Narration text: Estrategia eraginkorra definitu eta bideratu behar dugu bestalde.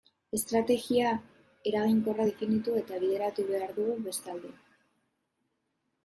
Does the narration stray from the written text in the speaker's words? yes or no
no